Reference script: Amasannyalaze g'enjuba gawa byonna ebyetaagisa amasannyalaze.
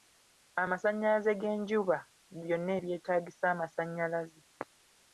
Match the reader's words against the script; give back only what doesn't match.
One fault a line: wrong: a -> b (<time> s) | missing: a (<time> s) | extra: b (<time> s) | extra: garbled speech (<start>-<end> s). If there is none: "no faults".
missing: gawa (2.0 s)